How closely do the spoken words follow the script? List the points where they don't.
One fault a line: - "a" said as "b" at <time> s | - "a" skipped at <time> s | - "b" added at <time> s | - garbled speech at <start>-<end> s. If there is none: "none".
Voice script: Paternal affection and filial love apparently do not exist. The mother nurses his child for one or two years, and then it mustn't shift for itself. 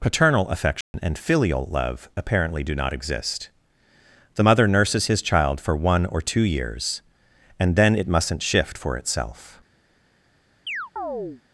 none